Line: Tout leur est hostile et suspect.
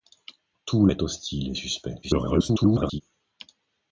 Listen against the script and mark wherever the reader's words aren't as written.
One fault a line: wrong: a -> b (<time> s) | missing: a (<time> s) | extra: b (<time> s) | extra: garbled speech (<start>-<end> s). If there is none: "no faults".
missing: leur (0.9 s)
extra: garbled speech (2.0-3.0 s)